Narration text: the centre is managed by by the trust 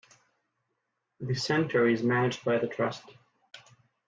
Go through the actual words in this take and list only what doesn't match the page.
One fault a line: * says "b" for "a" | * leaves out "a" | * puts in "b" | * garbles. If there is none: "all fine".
* leaves out "by"